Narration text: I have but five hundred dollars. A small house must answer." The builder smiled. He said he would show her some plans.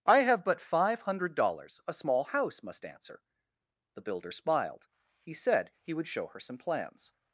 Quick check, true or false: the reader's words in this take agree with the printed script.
true